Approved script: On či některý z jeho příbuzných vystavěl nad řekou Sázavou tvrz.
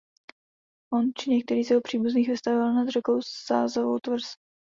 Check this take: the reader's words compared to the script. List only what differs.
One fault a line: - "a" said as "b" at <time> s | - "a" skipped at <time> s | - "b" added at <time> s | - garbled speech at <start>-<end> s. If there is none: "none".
none